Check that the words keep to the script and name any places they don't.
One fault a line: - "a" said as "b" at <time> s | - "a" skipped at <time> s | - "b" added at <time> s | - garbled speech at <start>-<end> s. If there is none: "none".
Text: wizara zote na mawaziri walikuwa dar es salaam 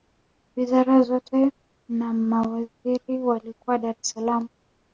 none